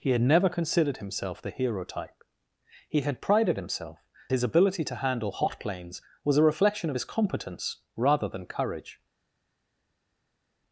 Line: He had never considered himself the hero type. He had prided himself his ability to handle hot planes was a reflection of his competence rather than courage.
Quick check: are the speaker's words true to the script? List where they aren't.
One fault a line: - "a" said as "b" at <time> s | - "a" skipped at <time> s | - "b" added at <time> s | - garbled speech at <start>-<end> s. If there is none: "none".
none